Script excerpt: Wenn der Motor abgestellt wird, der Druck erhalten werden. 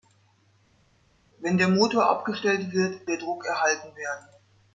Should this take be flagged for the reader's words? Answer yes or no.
no